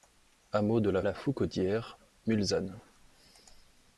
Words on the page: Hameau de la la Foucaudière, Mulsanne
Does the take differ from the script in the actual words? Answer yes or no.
no